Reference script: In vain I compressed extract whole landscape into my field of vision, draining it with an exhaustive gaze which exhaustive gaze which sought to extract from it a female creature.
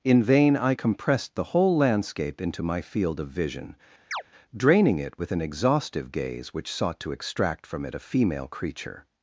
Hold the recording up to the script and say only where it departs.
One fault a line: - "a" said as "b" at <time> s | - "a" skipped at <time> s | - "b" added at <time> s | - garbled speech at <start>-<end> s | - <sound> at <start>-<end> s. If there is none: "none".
- "extract" said as "the" at 1.3 s
- chirp at 4.1-4.2 s
- "exhaustive gaze which" skipped at 6.7 s